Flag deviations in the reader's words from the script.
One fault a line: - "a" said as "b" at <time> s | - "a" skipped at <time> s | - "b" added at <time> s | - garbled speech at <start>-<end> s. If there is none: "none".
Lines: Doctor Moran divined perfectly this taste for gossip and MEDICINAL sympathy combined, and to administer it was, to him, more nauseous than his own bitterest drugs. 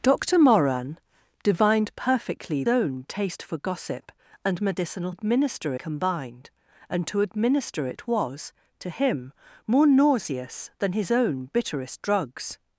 - "this" said as "own" at 2.7 s
- "sympathy" said as "administer" at 5.1 s